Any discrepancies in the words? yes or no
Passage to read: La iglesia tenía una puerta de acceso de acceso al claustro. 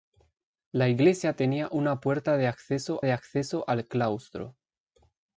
no